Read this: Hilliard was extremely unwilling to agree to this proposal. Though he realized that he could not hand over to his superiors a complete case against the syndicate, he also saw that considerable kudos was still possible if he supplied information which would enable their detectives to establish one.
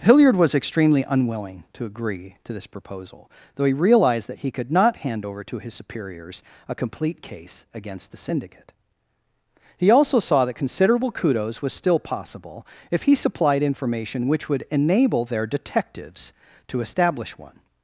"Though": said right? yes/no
yes